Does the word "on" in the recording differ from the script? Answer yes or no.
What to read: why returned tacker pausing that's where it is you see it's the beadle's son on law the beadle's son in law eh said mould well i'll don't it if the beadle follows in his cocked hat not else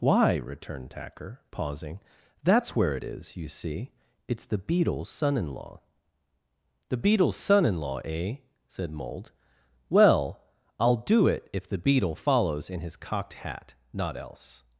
yes